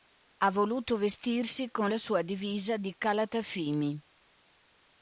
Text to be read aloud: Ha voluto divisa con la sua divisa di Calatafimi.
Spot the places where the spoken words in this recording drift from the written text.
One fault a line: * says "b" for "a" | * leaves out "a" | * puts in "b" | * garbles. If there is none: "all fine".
* says "vestirsi" for "divisa"